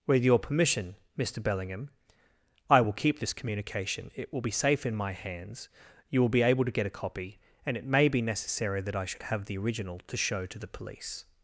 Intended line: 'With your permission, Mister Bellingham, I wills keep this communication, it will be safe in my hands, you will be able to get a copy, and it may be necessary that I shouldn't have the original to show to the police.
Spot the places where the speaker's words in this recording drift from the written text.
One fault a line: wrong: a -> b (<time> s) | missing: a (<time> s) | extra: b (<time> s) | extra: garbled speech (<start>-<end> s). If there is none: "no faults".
wrong: wills -> will (2.8 s)
wrong: shouldn't -> should (9.1 s)